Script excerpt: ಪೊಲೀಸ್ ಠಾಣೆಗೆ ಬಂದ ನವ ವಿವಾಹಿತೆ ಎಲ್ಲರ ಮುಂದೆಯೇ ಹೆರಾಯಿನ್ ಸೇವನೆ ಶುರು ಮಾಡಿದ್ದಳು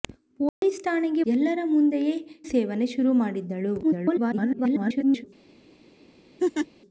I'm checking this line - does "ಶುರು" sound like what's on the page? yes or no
yes